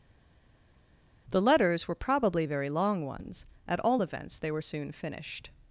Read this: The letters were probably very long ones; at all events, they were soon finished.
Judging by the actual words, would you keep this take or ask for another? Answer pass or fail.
pass